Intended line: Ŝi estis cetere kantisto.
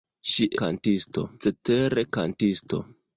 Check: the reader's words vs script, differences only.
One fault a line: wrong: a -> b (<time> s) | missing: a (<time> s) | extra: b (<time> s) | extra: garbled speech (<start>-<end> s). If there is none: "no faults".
wrong: estis -> kantisto (0.6 s)